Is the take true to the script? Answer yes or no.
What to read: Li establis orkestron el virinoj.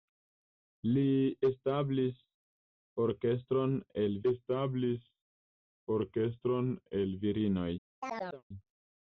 no